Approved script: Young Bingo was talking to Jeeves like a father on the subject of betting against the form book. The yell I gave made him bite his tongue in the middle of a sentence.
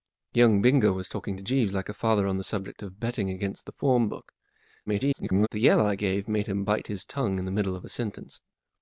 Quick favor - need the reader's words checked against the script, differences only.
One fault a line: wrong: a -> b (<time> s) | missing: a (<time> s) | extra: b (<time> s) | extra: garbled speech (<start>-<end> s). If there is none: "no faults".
extra: garbled speech (4.9-5.5 s)